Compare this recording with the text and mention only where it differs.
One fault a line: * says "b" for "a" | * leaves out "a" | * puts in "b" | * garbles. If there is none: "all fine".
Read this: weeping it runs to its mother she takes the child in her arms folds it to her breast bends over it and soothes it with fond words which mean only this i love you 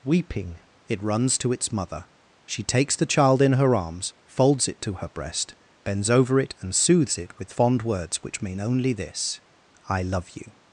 all fine